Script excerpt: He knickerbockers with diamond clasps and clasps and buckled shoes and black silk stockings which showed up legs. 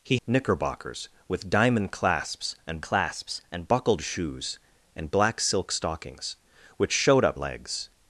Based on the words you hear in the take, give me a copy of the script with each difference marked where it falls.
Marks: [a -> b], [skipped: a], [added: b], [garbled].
He knickerbockers with diamond clasps and clasps and buckled shoes and black silk stockings which showed up legs.